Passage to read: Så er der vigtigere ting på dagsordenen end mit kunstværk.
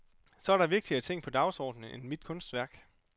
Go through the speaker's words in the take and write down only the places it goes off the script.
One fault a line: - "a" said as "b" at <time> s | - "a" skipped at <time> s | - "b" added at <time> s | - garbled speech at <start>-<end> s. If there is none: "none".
none